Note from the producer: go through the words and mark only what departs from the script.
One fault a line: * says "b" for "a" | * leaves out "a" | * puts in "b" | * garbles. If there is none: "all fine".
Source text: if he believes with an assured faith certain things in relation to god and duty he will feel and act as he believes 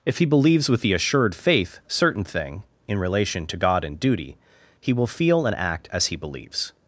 * says "the" for "an"
* says "thing" for "things"